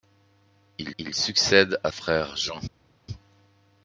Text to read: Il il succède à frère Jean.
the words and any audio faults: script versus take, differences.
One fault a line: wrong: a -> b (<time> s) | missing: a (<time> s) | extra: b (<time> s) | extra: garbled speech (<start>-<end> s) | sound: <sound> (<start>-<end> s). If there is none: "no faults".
no faults